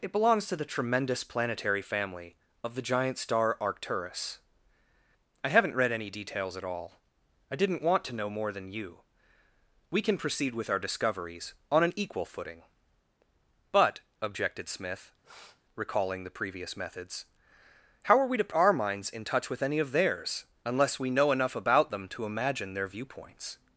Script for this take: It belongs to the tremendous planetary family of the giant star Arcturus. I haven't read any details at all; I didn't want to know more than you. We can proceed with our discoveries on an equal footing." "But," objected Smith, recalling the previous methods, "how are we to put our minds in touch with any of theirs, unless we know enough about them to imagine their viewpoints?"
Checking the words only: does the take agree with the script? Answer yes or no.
no